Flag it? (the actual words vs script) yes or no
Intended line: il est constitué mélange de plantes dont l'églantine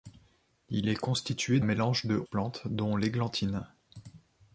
no